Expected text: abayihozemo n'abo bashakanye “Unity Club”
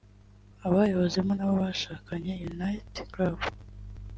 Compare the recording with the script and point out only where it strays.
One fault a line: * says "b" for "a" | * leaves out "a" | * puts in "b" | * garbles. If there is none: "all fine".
all fine